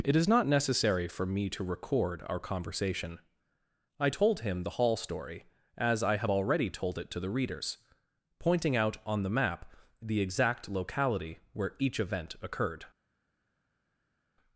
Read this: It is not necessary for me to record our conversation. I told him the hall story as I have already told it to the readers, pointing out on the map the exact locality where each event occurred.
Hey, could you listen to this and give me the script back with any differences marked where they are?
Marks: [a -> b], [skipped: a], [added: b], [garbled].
It is not necessary for me to record our conversation. I told him the hall story as I have already told it to the readers, pointing out on the map the exact locality where each event occurred.